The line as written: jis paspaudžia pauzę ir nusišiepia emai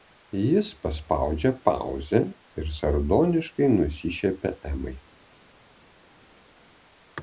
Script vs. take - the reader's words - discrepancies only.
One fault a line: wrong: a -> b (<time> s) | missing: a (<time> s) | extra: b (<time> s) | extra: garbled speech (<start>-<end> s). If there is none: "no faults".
extra: sardoniškai (2.8 s)